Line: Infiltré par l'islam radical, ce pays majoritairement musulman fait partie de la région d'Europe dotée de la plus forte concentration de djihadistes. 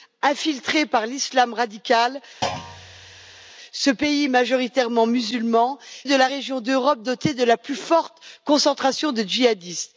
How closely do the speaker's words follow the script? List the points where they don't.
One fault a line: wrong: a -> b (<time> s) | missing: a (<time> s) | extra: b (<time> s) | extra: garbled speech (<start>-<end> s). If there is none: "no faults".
missing: fait partie (5.8 s)